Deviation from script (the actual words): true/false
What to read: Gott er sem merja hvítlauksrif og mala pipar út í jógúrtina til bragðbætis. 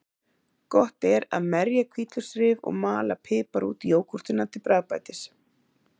true